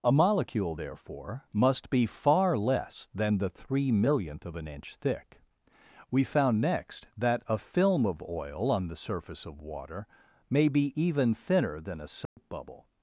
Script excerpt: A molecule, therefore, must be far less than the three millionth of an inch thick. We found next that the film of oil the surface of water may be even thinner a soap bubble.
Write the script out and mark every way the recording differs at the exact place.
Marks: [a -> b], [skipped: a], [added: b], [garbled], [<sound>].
A molecule, therefore, must be far less than the three millionth of an inch thick. We found next that [the -> a] film of oil [added: on] the surface of water may be even thinner [added: than] a soap [dropout] bubble.